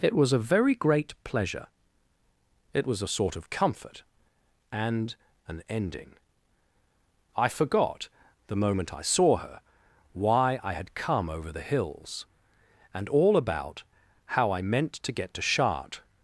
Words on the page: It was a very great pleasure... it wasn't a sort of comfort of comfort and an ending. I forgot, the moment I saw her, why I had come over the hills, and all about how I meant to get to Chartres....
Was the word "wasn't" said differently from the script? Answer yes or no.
yes